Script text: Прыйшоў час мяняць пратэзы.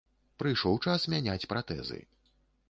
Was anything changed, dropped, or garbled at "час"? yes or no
no